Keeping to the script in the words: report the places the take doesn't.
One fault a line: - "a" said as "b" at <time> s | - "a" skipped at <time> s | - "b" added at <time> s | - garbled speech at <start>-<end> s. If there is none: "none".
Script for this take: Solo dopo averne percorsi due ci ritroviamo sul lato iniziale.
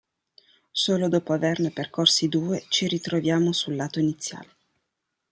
none